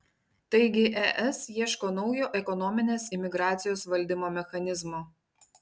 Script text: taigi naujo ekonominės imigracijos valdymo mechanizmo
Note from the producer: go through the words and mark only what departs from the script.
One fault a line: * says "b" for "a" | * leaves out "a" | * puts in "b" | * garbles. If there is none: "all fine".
* puts in "es ieško"